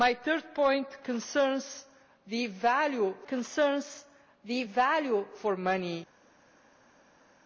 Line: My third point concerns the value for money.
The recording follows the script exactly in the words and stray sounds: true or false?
false